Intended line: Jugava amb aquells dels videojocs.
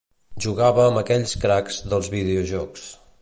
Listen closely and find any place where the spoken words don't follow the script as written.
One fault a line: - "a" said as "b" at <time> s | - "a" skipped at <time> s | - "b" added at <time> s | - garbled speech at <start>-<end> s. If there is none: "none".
- "cracs" added at 1.4 s